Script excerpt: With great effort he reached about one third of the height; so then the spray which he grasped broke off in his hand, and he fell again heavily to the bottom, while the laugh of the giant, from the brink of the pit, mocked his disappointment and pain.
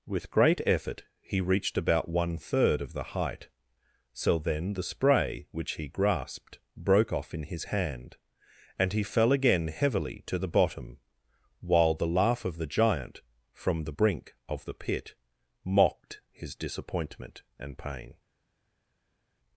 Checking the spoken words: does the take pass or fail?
pass